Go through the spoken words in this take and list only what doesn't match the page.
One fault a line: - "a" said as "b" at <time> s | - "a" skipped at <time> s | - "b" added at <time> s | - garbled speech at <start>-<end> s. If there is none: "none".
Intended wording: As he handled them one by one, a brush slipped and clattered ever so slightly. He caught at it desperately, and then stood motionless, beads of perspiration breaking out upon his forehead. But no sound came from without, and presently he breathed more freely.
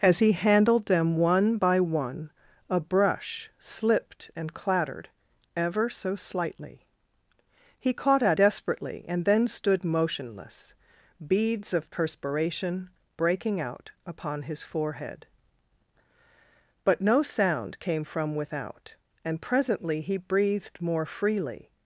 - "it" skipped at 8.4 s